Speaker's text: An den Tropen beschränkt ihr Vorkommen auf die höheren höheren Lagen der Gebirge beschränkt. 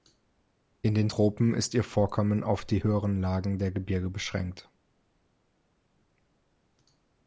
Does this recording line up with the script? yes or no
no